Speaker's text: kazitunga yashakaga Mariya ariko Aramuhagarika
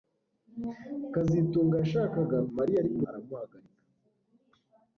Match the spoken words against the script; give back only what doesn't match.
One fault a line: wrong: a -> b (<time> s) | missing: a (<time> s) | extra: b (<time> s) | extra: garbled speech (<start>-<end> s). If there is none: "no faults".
no faults